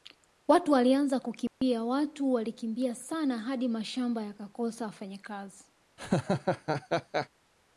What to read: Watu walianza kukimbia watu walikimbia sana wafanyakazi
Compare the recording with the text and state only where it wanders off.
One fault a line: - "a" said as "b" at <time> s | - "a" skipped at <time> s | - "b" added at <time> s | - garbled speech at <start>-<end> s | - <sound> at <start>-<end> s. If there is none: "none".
- dropout at 1.5-1.6 s
- "hadi mashamba yakakosa" added at 3.4 s
- laugh at 6.0-7.3 s